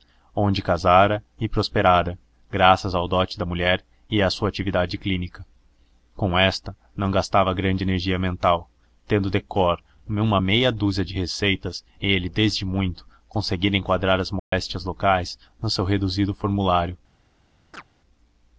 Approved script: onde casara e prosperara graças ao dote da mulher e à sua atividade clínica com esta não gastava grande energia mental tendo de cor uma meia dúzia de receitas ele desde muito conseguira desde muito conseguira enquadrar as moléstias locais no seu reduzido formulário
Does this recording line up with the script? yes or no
no